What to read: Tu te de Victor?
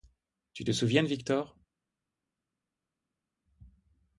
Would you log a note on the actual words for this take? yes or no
yes